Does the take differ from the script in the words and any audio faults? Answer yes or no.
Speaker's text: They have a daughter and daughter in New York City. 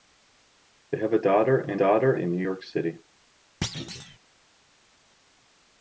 yes